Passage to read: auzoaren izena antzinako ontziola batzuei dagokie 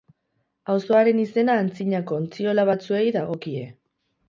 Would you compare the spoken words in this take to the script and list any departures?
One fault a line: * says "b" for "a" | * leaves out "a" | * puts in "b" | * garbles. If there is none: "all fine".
all fine